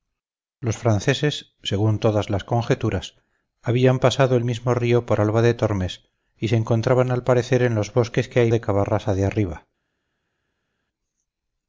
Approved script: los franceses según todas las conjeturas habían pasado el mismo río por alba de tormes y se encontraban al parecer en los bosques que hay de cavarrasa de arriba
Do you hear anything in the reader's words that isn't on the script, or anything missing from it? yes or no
no